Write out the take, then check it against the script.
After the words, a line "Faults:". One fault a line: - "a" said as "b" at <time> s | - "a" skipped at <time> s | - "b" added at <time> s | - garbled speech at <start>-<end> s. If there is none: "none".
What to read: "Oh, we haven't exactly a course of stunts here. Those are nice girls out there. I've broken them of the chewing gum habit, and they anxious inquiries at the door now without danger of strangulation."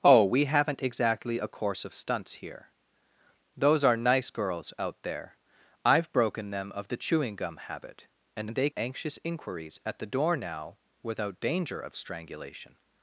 "Oh, we haven't exactly a course of stunts here. Those are nice girls out there. I've broken them of the chewing gum habit, and they anxious inquiries at the door now without danger of strangulation."
Faults:
none